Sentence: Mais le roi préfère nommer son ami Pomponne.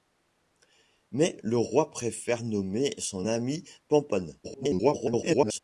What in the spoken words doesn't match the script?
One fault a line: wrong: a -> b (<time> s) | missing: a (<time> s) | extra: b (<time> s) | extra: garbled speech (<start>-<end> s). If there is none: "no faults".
extra: garbled speech (4.4-5.6 s)